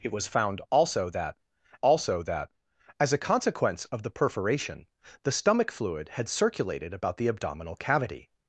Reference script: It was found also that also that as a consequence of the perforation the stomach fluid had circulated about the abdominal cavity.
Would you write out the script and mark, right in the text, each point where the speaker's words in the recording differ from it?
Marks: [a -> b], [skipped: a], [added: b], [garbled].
It was found also that also that as a consequence of the perforation the stomach fluid had circulated about the abdominal cavity.